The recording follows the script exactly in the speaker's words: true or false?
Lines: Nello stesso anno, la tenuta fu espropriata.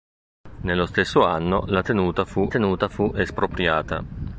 false